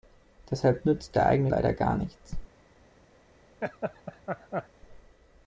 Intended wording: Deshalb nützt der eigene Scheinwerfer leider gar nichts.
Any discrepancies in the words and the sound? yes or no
yes